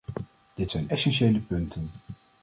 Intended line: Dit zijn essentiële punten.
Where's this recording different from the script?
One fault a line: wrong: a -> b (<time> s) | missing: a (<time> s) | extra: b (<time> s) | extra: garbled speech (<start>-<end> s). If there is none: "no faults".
no faults